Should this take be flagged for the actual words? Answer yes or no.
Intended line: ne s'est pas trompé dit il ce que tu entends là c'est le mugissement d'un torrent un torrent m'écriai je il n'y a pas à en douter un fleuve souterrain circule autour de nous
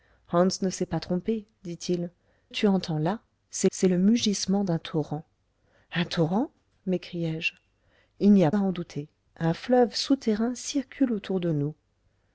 yes